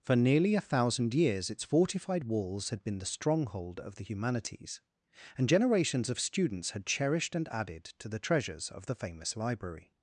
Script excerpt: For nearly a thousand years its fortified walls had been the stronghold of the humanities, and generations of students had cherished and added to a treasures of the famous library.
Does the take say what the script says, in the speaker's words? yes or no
no